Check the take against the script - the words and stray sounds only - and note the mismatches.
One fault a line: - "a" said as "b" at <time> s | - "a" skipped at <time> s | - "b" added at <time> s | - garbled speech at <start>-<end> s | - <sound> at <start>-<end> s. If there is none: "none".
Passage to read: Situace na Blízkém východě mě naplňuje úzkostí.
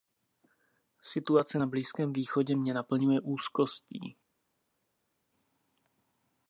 none